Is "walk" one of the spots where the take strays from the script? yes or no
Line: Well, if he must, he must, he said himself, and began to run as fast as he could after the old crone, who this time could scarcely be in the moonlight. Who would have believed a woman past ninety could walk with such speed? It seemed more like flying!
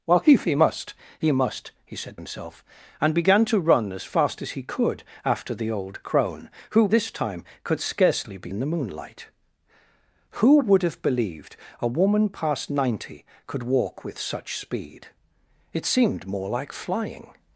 no